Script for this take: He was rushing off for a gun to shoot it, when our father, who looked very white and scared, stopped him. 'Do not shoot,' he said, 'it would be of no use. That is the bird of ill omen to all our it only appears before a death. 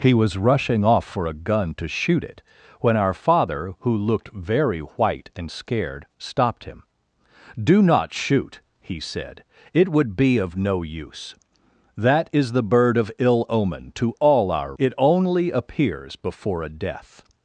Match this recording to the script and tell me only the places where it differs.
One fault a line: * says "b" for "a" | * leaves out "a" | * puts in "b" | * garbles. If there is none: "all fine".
all fine